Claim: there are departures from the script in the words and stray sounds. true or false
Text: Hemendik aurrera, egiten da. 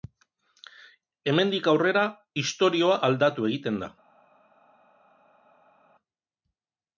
true